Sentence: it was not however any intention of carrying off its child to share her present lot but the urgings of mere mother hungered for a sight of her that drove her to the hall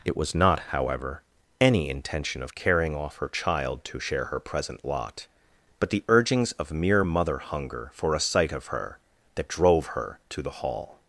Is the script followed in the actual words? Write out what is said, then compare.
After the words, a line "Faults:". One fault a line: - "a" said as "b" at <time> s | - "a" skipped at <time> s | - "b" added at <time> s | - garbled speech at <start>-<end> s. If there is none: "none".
it was not however any intention of carrying off her child to share her present lot but the urgings of mere mother hunger for a sight of her that drove her to the hall
Faults:
- "its" said as "her" at 3.1 s
- "hungered" said as "hunger" at 7.4 s